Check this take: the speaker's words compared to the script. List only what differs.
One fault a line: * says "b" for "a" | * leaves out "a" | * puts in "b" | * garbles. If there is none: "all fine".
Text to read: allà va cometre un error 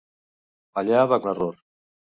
* leaves out "cometre"